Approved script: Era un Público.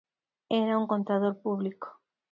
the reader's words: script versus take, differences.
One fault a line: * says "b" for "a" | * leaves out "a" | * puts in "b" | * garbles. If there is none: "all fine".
* puts in "contador"